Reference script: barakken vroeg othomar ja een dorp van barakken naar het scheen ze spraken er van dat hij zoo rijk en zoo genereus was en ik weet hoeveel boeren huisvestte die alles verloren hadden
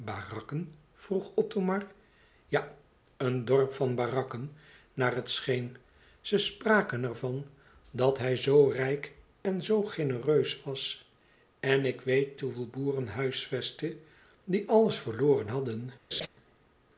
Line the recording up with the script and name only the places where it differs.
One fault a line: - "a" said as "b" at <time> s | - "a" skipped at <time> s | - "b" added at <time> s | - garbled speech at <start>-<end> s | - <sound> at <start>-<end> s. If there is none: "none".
- laugh at 16.1-16.3 s